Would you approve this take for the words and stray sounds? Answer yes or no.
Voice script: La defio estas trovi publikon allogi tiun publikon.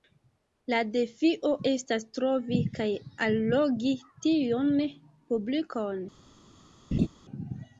no